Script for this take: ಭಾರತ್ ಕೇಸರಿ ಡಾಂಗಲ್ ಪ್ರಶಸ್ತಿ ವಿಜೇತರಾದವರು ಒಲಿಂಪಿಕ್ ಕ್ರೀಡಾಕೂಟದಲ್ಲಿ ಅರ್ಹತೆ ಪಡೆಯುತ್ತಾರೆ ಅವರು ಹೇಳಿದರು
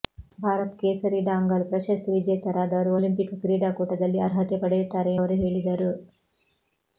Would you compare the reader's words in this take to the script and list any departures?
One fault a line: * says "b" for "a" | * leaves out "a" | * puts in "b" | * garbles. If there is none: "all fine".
all fine